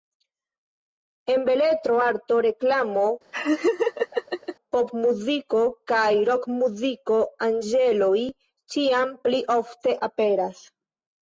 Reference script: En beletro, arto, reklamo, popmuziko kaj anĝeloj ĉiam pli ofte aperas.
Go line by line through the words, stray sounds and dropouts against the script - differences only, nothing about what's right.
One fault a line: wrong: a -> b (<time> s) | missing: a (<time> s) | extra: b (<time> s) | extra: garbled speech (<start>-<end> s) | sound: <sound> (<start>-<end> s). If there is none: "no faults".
sound: laugh (3.3-4.6 s)
extra: rokmuziko (6.3 s)